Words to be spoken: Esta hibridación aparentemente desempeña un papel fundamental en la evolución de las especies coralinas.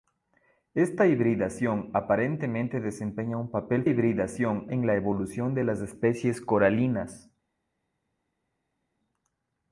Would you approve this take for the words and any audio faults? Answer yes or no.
no